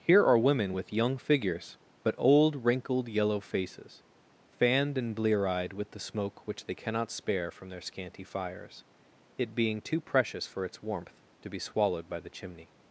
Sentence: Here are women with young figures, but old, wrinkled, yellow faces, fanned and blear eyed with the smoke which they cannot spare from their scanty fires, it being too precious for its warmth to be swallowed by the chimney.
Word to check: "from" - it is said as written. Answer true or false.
true